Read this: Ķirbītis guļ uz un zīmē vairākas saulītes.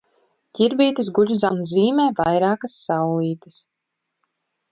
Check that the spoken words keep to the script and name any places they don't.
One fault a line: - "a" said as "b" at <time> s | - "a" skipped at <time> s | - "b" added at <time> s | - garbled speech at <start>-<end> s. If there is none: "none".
none